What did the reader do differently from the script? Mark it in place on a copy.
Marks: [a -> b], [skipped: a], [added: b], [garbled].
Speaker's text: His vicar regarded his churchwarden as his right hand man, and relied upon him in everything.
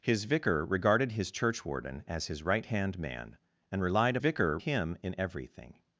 His vicar regarded his churchwarden as his right hand man, and relied [upon -> vicar] him in everything.